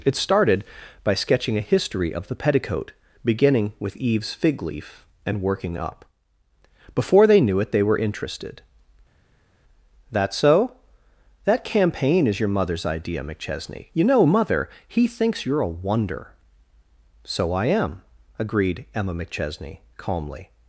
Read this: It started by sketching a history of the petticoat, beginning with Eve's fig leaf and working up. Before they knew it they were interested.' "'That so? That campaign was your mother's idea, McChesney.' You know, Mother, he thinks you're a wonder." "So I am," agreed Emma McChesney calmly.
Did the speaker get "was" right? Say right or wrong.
wrong